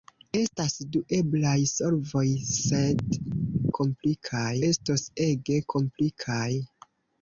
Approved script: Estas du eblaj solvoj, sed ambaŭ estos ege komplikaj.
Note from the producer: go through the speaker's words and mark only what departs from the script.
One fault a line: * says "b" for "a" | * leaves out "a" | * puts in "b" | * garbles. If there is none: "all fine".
* says "komplikaj" for "ambaŭ"